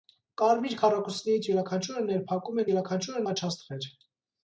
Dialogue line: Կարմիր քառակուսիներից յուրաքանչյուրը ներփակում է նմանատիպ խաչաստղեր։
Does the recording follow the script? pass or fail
fail